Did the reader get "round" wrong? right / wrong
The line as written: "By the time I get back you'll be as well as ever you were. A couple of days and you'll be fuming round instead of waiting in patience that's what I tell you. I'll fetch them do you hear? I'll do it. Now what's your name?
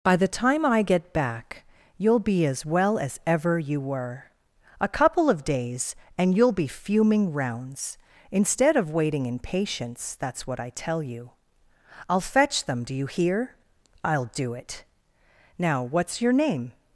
wrong